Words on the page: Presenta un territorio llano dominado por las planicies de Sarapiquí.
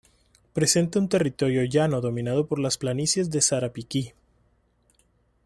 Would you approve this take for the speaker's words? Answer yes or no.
yes